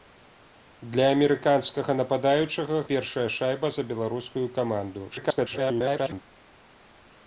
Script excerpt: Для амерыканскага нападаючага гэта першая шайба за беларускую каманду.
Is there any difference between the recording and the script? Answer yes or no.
yes